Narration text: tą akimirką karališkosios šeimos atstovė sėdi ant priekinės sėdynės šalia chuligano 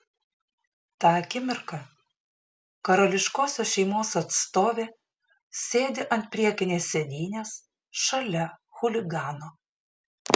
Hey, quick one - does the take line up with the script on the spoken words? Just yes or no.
yes